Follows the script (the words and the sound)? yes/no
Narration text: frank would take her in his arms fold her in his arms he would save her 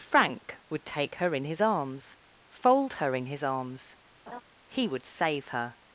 no